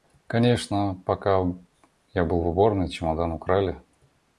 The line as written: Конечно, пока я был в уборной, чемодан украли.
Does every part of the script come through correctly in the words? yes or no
yes